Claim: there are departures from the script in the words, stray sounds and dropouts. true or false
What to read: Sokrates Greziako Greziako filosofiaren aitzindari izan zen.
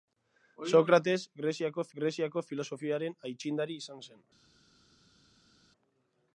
false